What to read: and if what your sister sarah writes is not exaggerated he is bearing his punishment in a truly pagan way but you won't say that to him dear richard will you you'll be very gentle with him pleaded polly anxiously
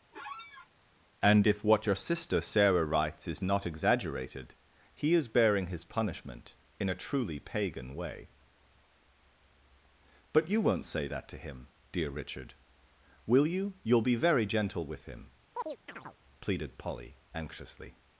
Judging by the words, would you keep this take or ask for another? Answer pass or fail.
pass